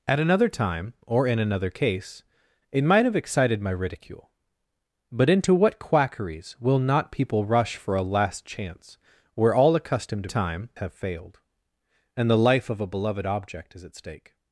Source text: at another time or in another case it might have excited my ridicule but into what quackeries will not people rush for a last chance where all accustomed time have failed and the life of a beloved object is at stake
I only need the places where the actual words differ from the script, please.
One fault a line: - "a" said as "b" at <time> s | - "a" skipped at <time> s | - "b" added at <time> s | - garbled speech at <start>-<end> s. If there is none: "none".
none